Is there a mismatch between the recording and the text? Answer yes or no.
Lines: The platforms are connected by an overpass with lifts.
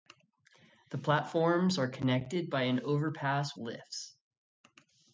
yes